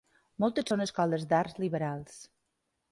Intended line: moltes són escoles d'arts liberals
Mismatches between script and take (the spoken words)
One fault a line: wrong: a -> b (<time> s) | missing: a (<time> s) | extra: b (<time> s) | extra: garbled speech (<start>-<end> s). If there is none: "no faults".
no faults